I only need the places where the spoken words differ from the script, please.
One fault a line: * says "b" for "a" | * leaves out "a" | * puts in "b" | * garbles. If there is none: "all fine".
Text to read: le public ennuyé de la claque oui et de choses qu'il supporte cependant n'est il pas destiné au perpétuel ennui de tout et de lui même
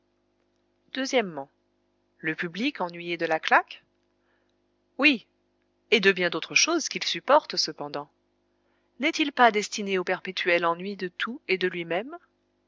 * puts in "bien d'autres"